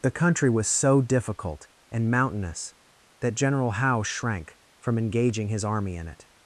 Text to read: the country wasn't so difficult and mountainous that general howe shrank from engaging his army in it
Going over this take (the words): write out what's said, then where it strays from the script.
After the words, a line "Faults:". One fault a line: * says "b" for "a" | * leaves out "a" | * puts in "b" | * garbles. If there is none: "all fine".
the country was so difficult and mountainous that general howe shrank from engaging his army in it
Faults:
* says "was" for "wasn't"